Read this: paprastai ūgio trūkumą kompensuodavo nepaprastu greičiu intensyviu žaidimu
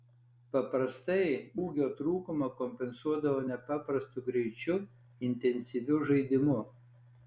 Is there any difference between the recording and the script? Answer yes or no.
no